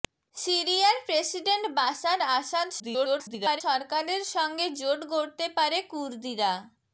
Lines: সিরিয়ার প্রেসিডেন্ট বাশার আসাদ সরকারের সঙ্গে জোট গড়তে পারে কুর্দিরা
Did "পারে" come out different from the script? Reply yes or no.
no